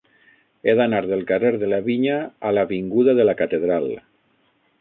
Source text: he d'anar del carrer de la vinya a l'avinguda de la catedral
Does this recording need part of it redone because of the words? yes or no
no